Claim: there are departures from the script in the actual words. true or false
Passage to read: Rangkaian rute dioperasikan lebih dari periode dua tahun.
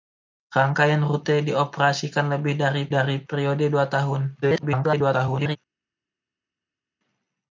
true